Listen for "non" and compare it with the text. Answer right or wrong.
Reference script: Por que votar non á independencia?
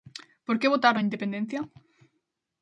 wrong